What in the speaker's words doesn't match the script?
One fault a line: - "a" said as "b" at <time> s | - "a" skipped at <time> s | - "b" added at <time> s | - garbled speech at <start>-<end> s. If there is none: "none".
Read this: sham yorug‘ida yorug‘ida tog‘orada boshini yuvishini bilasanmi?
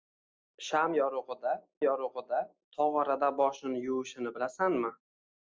none